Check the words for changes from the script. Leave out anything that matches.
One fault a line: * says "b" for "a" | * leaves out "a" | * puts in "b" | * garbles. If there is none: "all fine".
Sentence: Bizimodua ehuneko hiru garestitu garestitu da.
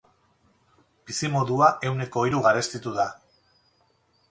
* leaves out "garestitu"